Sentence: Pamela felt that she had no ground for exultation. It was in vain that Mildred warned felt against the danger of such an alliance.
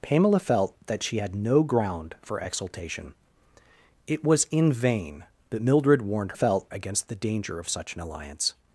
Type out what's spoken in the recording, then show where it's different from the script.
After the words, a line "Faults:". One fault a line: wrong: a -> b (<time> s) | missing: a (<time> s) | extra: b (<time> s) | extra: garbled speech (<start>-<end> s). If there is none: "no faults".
Pamela felt that she had no ground for exultation. It was in vain that Mildred warned felt against the danger of such an alliance.
Faults:
no faults